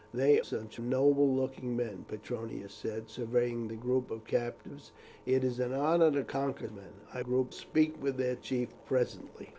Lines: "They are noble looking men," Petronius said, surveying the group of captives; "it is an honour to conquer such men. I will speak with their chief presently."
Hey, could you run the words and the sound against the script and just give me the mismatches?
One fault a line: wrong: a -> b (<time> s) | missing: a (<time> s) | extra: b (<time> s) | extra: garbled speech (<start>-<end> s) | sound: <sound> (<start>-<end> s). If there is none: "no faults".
wrong: are -> such (0.4 s)
missing: such (6.7 s)
wrong: will -> group (7.2 s)